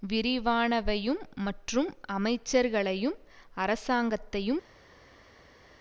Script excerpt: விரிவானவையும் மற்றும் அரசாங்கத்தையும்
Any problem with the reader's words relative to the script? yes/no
yes